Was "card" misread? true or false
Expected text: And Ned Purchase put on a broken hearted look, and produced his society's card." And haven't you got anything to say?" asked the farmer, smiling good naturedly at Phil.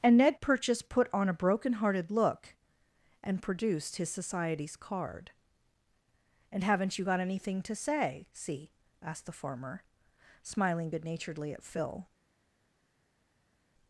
false